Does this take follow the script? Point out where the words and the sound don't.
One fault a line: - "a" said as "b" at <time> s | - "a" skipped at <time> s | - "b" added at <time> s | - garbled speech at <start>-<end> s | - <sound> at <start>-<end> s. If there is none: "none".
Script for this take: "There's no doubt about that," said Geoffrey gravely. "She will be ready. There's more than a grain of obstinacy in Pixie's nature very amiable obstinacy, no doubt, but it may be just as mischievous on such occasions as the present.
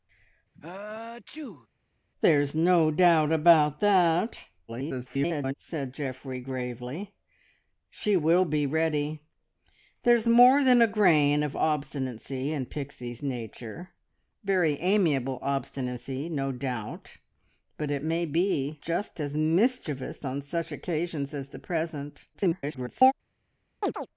- sneeze at 0.5-1.7 s
- garbled speech at 4.7-5.5 s
- garbled speech at 22.3-23.1 s
- chirp at 23.8-24.1 s